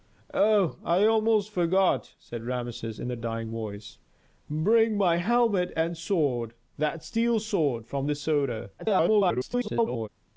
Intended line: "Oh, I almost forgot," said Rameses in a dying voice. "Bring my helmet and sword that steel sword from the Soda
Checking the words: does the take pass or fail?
fail